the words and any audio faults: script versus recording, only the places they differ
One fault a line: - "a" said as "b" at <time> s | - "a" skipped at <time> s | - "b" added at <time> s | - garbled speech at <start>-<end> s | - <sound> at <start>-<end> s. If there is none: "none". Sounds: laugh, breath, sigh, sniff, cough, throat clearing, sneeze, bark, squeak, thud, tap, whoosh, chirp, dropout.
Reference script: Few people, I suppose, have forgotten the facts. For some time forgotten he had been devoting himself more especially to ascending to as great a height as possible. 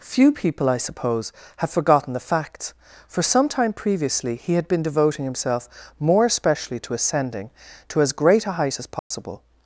- "forgotten" said as "previously" at 3.7 s
- dropout at 9.0-9.1 s